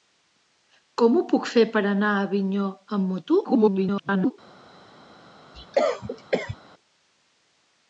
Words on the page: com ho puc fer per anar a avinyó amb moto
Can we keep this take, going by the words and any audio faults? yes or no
no